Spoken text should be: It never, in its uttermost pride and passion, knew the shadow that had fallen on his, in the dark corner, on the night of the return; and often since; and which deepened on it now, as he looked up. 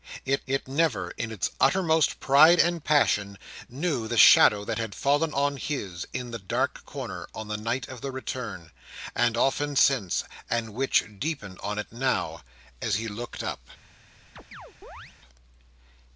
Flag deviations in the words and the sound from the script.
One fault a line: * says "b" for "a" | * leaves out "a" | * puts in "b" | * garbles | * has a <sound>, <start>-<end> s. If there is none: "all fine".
* puts in "it"
* has a chirp, 14.4-15.1 s